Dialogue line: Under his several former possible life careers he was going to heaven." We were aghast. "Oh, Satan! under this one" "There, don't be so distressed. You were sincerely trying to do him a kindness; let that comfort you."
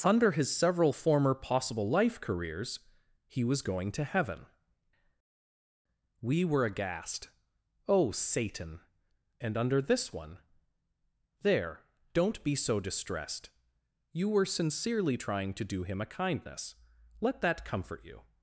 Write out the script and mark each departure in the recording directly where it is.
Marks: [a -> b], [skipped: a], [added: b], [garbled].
Under his several former possible life careers he was going to heaven." We were aghast. "Oh, Satan! [added: and] under this one" "There, don't be so distressed. You were sincerely trying to do him a kindness; let that comfort you."